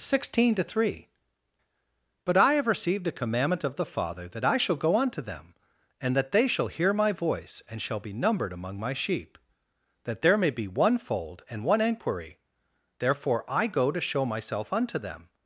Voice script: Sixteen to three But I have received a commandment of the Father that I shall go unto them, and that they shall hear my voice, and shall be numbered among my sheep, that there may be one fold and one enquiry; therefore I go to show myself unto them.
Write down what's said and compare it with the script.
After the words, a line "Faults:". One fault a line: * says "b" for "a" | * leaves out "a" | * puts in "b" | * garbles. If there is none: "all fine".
Sixteen to three But I have received a commandment of the Father that I shall go unto them, and that they shall hear my voice, and shall be numbered among my sheep, that there may be one fold and one enquiry; therefore I go to show myself unto them.
Faults:
all fine